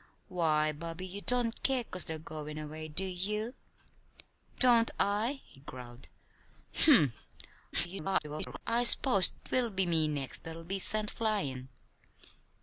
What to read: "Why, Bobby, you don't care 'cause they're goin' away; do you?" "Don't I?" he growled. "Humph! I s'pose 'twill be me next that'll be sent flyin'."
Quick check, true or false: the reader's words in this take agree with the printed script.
false